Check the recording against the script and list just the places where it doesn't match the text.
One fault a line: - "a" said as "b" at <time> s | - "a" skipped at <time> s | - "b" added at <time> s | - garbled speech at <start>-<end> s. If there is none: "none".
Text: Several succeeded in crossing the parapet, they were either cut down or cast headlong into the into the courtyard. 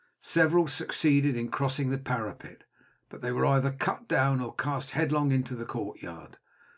- "but" added at 3.1 s
- "into the" skipped at 5.7 s